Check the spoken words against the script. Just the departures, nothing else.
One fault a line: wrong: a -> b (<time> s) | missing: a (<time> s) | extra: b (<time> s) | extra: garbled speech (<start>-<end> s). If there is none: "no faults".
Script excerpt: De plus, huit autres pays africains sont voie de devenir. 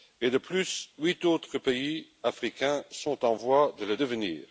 extra: en (3.2 s)
extra: le (3.8 s)